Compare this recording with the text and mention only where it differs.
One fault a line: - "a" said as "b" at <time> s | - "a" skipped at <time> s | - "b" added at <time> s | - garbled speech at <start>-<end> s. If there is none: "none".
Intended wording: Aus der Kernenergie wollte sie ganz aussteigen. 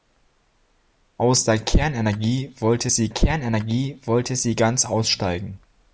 - "Kernenergie wollte sie" added at 3.1 s